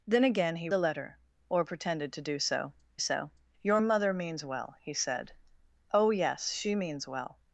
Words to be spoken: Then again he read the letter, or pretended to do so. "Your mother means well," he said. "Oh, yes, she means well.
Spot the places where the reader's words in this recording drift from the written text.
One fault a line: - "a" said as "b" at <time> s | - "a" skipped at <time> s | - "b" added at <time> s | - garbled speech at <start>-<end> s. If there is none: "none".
- "read" skipped at 0.7 s
- "so" added at 3.0 s